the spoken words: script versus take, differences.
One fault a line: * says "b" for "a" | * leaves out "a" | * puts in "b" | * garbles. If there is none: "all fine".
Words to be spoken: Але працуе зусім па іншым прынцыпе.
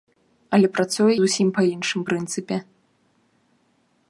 all fine